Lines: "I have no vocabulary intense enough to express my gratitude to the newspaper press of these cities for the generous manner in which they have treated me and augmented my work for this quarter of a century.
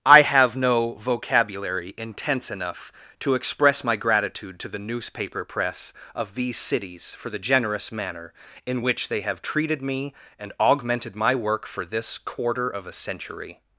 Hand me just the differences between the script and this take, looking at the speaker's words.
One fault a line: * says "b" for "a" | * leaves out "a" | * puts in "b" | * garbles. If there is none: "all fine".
all fine